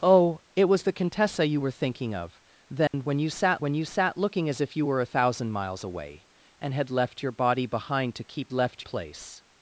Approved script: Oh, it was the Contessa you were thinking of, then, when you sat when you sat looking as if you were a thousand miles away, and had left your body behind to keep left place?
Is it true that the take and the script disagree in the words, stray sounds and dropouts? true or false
true